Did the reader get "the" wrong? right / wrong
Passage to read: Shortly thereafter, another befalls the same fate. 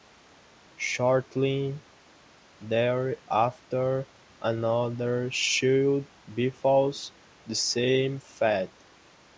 right